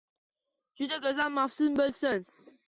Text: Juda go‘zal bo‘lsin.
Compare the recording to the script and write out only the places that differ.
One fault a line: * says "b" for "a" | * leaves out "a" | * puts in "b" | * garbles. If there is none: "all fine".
* puts in "mavsum"